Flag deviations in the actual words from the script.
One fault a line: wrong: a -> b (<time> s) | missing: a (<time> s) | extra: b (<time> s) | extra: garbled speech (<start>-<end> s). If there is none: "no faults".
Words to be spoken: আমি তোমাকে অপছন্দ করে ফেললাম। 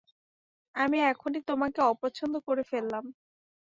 extra: এখনই (1.0 s)